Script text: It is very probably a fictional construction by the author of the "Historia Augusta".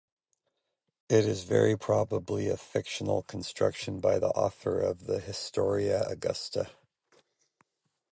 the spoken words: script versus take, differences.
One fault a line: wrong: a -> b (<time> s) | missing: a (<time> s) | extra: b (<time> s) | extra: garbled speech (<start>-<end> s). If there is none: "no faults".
no faults